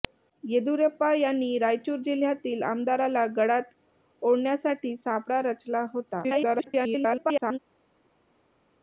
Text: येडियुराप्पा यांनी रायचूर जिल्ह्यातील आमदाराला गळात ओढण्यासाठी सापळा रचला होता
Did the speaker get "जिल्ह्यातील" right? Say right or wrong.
right